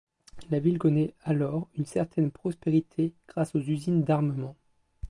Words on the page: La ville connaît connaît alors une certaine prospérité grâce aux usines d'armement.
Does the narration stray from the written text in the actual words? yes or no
yes